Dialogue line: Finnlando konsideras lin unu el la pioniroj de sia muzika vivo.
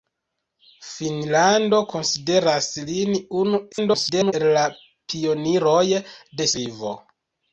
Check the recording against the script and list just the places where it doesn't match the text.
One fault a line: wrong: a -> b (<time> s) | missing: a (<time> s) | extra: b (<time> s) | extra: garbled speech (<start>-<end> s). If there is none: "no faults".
extra: garbled speech (3.7-4.3 s)
missing: sia muzika (6.5 s)